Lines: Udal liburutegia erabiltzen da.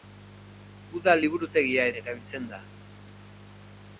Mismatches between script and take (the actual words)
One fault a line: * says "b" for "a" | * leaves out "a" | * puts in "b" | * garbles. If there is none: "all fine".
all fine